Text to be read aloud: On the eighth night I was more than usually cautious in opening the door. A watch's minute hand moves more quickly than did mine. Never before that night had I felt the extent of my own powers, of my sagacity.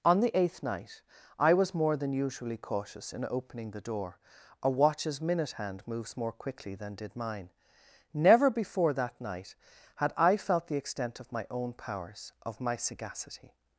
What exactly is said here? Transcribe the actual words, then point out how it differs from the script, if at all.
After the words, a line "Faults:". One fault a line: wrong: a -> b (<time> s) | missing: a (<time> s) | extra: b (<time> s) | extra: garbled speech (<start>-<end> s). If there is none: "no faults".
On the eighth night I was more than usually cautious in opening the door. A watch's minute hand moves more quickly than did mine. Never before that night had I felt the extent of my own powers, of my sagacity.
Faults:
no faults